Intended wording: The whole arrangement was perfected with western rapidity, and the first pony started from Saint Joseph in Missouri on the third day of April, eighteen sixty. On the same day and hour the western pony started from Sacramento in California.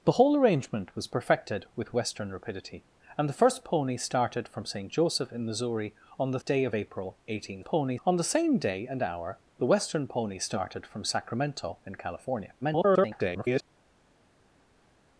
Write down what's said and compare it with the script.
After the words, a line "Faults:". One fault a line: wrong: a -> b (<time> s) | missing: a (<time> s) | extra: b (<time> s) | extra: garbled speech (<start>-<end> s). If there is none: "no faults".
The whole arrangement was perfected with western rapidity, and the first pony started from Saint Joseph in Missouri on the day of April, eighteen pony. On the same day and hour the western pony started from Sacramento in California. [garbled]
Faults:
missing: third (6.4 s)
wrong: sixty -> pony (7.6 s)
extra: garbled speech (12.6-13.6 s)